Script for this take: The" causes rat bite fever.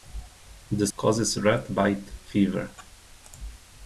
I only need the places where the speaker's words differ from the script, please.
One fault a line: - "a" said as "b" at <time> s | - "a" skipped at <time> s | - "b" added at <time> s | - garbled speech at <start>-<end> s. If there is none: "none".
none